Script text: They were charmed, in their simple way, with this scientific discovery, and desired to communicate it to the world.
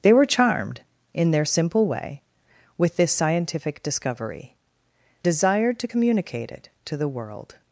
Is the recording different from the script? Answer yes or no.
yes